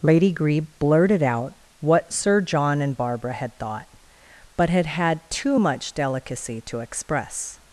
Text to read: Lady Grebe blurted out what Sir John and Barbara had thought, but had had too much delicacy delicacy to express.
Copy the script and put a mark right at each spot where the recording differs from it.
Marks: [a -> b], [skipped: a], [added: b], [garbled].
Lady Grebe blurted out what Sir John and Barbara had thought, but had had too much delicacy [skipped: delicacy] to express.